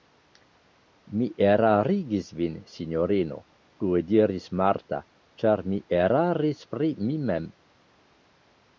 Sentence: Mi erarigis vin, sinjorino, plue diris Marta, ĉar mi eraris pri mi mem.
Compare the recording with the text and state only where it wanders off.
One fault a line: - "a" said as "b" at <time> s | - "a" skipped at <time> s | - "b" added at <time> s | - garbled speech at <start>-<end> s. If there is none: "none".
none